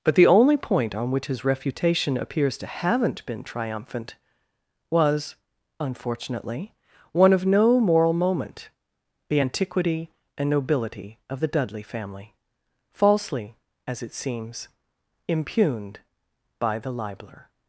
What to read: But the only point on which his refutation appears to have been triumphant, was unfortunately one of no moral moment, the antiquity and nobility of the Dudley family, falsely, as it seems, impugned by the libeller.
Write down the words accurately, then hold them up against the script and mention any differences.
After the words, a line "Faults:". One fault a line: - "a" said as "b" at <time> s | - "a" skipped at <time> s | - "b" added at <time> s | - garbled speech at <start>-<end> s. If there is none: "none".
But the only point on which his refutation appears to haven't been triumphant, was unfortunately one of no moral moment, the antiquity and nobility of the Dudley family, falsely, as it seems, impugned by the libeller.
Faults:
- "have" said as "haven't" at 2.7 s